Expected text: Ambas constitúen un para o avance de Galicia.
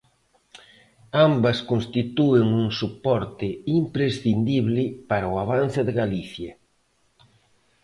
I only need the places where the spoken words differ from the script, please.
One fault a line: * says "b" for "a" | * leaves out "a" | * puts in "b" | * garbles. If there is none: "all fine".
* puts in "soporte imprescindible"